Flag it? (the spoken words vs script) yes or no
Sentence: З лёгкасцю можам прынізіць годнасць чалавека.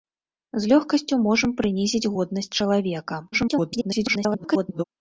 yes